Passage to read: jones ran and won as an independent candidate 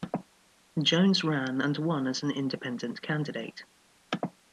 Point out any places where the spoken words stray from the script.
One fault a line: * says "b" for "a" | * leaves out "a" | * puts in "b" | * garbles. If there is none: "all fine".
all fine